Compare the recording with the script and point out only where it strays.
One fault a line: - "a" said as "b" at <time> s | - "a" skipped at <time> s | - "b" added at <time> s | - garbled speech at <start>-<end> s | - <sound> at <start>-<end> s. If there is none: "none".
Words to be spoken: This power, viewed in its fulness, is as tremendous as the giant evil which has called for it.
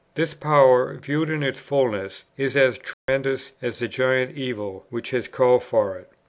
- dropout at 2.9-3.1 s